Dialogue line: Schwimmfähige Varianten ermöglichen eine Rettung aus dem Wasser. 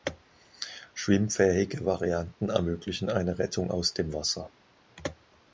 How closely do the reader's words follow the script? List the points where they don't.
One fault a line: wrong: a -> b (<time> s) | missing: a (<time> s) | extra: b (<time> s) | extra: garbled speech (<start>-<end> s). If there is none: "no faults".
no faults